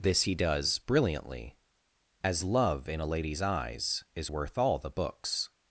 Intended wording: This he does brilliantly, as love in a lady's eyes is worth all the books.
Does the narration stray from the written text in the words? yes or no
no